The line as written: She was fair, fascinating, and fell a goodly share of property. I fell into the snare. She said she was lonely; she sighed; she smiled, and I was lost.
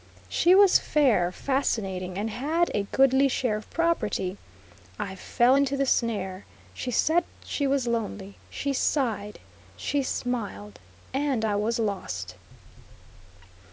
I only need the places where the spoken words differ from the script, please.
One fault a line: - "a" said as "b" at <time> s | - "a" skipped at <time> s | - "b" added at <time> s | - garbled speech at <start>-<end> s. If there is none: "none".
- "fell" said as "had" at 2.3 s